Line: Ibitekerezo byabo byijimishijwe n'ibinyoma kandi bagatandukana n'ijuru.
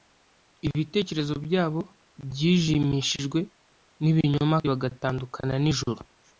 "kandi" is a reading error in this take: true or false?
true